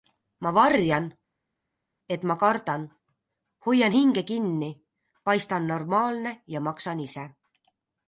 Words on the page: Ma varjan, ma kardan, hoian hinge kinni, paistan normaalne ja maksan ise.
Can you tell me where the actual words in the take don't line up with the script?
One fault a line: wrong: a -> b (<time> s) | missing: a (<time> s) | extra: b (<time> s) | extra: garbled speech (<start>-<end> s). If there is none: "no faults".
extra: et (2.2 s)